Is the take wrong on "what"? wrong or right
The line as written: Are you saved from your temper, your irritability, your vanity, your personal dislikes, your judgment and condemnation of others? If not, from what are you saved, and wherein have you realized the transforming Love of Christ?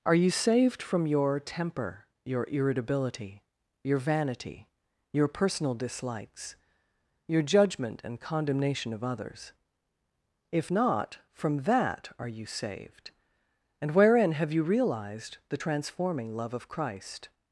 wrong